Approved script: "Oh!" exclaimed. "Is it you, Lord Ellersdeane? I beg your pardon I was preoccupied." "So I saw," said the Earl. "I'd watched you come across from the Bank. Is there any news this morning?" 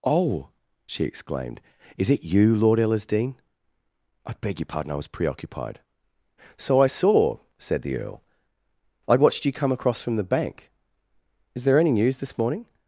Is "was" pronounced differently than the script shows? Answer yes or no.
no